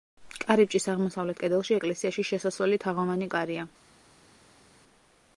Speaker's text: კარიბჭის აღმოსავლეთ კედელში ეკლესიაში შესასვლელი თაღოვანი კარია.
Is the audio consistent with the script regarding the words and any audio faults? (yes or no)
yes